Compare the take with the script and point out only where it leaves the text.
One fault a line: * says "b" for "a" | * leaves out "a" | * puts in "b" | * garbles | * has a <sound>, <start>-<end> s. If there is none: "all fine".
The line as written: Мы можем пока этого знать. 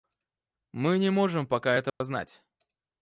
* puts in "не"
* has a dropout, 1.9-2.0 s